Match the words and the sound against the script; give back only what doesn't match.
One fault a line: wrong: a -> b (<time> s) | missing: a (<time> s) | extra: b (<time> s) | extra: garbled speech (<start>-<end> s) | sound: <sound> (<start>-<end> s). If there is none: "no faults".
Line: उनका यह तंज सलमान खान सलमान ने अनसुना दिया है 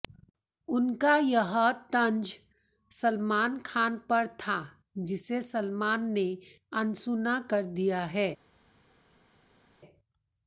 extra: पर था जिसे (4.1 s)
extra: कर (7.5 s)